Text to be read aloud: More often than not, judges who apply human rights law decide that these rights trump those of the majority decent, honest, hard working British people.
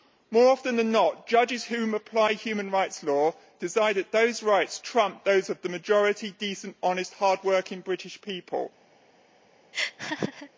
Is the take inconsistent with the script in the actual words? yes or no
yes